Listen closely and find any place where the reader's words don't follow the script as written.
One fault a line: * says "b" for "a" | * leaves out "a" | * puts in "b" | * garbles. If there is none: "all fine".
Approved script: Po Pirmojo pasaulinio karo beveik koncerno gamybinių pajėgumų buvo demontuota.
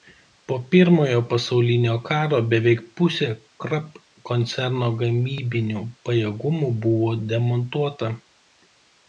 * puts in "pusė Krupp"